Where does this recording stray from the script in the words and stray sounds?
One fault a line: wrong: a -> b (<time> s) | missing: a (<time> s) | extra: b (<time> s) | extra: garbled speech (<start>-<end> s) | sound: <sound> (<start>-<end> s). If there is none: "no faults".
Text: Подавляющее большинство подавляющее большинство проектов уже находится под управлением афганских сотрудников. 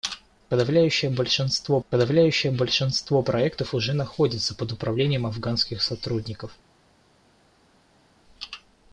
no faults